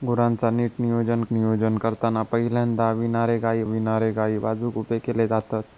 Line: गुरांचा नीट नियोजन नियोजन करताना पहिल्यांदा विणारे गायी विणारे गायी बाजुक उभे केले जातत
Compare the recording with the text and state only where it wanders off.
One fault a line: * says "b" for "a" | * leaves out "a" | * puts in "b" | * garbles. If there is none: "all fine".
all fine